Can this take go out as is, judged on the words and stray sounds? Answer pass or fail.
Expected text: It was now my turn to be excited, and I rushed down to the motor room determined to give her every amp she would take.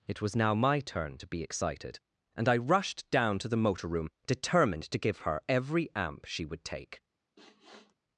fail